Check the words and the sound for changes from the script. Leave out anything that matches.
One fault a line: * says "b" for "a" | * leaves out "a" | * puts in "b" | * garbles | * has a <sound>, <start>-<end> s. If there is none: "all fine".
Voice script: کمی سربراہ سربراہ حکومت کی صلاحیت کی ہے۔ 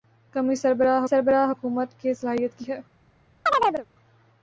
* has a chirp, 3.5-3.9 s